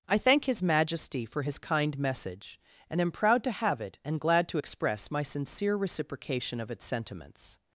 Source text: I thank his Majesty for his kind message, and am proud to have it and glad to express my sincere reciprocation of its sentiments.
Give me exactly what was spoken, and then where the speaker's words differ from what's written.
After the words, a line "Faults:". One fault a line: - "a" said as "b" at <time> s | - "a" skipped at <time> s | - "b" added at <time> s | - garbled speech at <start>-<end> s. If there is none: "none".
I thank his Majesty for his kind message, and am proud to have it and glad to express my sincere reciprocation of its sentiments.
Faults:
none